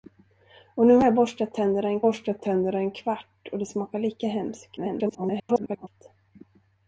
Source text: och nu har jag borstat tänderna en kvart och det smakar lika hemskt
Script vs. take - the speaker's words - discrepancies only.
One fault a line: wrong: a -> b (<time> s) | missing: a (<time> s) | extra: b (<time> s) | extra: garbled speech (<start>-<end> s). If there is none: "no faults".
extra: borstat tänderna en (2.0 s)
extra: garbled speech (4.8-5.9 s)